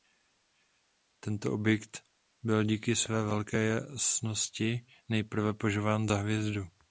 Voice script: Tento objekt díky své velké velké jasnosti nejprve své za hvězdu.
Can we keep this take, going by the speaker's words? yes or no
no